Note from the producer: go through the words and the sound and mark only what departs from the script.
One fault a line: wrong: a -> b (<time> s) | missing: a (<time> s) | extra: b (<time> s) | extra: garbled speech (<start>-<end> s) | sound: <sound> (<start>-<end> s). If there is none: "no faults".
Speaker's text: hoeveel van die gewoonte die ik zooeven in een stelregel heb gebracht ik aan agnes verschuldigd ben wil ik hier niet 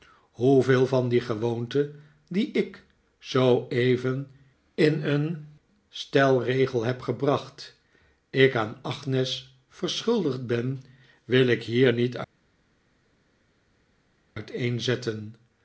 no faults